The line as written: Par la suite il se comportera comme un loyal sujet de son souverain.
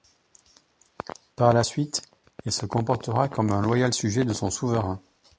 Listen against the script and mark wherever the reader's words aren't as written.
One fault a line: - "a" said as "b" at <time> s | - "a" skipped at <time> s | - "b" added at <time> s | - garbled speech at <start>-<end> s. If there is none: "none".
none